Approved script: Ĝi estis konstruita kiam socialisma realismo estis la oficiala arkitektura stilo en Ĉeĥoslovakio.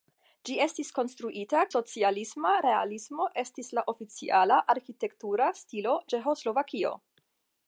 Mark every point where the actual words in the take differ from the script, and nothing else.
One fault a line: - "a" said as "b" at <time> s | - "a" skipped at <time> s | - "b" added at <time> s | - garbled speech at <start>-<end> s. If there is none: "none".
- "kiam" skipped at 1.6 s
- "en" skipped at 6.0 s